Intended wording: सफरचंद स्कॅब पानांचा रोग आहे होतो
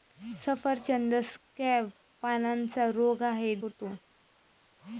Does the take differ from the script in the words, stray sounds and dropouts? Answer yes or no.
no